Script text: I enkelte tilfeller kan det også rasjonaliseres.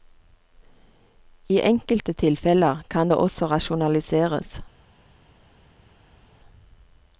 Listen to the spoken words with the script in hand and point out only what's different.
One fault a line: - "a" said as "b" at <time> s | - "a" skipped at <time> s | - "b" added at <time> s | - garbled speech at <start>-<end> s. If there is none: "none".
none